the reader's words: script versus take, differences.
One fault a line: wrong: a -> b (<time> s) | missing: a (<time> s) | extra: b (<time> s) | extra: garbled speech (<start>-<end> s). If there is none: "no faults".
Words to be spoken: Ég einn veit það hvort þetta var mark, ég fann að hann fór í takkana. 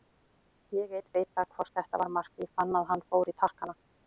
no faults